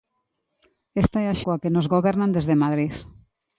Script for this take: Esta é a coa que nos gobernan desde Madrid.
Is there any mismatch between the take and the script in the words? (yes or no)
no